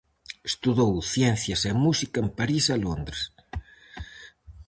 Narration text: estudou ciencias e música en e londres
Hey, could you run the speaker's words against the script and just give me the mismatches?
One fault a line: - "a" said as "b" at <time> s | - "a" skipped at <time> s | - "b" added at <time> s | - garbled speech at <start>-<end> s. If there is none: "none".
- "parís" added at 2.4 s